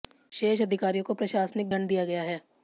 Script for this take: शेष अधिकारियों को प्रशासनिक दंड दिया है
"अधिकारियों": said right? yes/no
yes